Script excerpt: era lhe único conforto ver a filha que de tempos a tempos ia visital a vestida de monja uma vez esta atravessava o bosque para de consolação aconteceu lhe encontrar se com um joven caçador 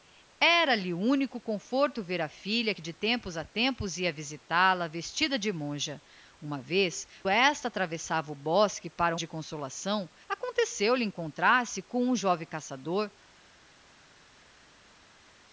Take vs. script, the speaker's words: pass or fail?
pass